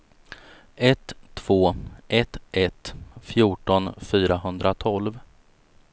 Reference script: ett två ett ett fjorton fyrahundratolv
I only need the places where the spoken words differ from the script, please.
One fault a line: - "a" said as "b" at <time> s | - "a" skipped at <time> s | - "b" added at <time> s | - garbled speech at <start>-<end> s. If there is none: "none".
none